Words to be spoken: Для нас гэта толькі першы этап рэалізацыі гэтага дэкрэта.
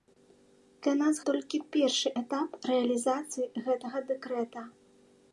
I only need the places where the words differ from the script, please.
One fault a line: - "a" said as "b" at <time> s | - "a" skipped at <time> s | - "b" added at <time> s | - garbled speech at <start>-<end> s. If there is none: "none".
- "гэта" skipped at 1.2 s